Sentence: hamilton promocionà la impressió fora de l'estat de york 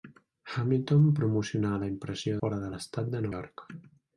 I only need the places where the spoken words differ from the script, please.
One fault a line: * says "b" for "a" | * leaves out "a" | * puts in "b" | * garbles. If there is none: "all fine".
all fine